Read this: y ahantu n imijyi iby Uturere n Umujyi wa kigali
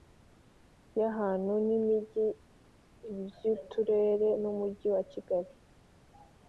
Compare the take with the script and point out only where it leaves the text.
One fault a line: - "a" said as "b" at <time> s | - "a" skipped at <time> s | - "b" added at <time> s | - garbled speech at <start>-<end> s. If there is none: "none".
none